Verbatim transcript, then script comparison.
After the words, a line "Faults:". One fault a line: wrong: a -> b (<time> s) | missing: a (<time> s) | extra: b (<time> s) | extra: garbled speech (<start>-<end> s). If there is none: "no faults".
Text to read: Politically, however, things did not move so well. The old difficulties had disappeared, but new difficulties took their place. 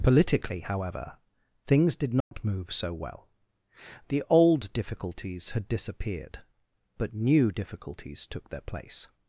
Politically, however, things did not move so well. The old difficulties had disappeared, but new difficulties took their place.
Faults:
no faults